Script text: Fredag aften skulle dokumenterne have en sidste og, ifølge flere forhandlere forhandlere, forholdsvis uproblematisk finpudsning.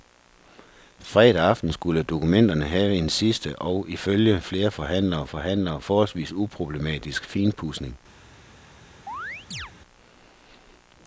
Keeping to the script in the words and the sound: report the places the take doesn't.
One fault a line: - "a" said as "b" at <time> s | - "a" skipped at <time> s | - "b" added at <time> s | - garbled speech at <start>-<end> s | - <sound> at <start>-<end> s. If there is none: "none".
- chirp at 9.1-9.7 s